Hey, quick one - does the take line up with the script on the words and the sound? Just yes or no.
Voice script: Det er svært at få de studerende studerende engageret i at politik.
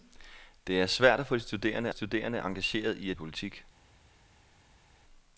yes